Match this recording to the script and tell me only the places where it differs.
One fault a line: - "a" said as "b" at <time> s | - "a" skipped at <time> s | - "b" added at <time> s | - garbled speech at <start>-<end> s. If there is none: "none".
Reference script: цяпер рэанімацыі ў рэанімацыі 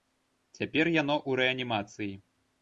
- "рэанімацыі" said as "яно" at 0.9 s